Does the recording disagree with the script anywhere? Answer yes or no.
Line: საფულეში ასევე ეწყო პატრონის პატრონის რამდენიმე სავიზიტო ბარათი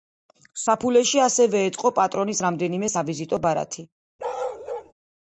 yes